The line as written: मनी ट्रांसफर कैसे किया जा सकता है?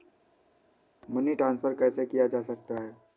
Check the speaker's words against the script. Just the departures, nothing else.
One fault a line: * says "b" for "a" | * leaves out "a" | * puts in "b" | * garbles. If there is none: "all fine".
all fine